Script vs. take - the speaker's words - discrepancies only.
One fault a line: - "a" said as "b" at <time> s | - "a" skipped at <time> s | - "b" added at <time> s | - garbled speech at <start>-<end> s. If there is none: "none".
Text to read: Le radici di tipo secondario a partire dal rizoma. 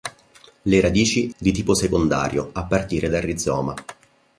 none